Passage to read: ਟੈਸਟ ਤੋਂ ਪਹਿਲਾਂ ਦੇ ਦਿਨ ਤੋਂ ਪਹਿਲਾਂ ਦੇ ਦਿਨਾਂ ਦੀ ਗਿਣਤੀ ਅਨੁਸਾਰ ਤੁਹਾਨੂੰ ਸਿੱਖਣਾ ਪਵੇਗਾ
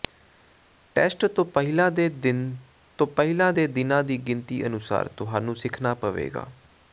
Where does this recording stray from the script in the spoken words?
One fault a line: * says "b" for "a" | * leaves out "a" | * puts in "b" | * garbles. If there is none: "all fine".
all fine